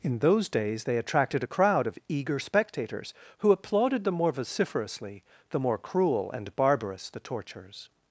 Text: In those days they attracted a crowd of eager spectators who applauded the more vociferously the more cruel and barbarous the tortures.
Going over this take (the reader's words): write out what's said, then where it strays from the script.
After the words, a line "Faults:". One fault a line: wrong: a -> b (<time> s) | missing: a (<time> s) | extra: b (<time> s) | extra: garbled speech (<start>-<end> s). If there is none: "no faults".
In those days they attracted a crowd of eager spectators who applauded the more vociferously the more cruel and barbarous the tortures.
Faults:
no faults